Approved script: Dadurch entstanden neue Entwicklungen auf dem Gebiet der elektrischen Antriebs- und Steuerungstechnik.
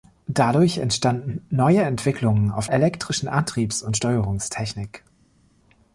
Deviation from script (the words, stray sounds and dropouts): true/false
true